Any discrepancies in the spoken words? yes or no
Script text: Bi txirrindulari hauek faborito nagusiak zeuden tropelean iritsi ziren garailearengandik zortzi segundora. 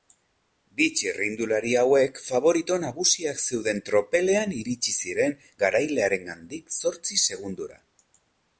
no